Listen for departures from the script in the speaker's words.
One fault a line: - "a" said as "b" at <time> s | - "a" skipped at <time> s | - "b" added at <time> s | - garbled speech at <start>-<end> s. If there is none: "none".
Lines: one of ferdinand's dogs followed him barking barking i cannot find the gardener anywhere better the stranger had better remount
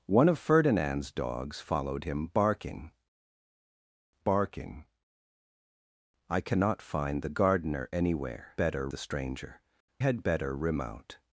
none